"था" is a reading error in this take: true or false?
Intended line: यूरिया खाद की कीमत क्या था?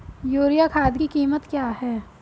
true